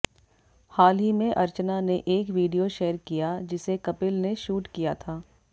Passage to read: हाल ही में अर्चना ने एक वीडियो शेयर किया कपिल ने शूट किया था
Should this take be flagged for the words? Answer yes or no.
yes